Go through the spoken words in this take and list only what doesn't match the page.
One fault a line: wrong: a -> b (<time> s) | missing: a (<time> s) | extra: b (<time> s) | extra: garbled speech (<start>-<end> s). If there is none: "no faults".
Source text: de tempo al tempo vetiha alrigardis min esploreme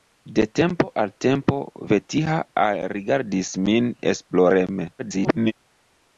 extra: garbled speech (5.0-5.5 s)